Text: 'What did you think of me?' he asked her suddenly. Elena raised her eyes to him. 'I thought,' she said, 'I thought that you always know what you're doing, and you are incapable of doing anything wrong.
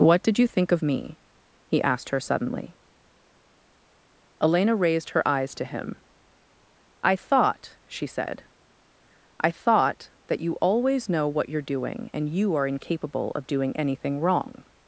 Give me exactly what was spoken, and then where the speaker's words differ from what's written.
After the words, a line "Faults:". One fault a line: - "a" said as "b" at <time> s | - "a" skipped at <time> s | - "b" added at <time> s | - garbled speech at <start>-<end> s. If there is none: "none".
'What did you think of me?' he asked her suddenly. Elena raised her eyes to him. 'I thought,' she said, 'I thought that you always know what you're doing, and you are incapable of doing anything wrong.
Faults:
none